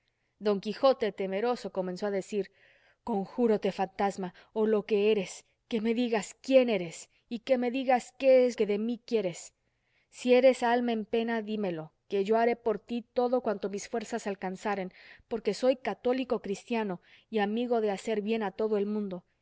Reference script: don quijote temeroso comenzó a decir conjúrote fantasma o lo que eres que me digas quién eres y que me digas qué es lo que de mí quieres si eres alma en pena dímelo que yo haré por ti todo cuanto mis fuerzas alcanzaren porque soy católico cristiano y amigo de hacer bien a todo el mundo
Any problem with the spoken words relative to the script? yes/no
yes